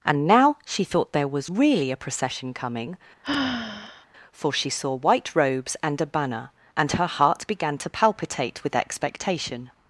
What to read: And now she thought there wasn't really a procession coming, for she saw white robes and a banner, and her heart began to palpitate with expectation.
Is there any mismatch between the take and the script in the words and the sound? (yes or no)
yes